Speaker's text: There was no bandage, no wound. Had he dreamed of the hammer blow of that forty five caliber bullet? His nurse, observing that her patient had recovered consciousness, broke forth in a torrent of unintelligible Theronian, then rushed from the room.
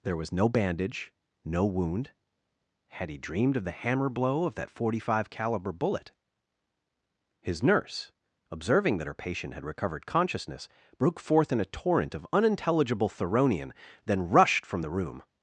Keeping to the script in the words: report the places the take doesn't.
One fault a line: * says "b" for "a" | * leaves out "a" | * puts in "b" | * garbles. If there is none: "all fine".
all fine